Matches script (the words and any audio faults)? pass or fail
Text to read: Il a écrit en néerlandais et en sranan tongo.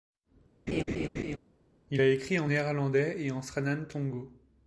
fail